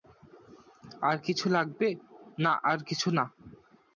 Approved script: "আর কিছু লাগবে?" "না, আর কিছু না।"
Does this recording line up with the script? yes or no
yes